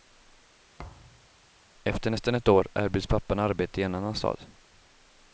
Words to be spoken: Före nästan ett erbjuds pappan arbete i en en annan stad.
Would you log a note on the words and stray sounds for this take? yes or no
yes